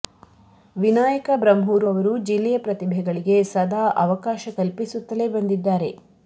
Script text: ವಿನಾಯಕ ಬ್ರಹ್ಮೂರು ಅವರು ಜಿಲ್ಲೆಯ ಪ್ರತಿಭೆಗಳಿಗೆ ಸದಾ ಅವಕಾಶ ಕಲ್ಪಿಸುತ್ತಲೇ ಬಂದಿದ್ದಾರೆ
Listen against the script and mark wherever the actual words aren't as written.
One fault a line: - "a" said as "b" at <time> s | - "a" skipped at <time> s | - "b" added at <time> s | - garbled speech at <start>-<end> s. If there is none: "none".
none